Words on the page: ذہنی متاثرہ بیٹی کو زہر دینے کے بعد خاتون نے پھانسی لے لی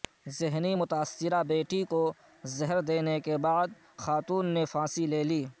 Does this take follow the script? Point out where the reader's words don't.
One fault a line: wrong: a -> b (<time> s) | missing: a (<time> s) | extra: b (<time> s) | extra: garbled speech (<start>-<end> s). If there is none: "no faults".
no faults